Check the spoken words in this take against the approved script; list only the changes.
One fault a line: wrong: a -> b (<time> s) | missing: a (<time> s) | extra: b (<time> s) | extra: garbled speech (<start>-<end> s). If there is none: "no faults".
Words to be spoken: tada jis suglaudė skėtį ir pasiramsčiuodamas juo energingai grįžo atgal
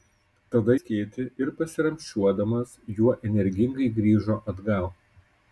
missing: jis suglaudė (0.8 s)